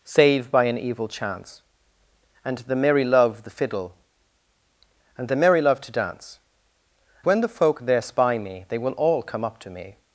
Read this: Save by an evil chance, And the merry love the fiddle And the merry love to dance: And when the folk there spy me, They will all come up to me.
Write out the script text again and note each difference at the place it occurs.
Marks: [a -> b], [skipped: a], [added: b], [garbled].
Save by an evil chance, And the merry love the fiddle And the merry love to dance: [skipped: And] when the folk there spy me, They will all come up to me.